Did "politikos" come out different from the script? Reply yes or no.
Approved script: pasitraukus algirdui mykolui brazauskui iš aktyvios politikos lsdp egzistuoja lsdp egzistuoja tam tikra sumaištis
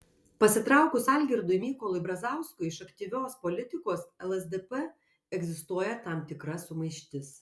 no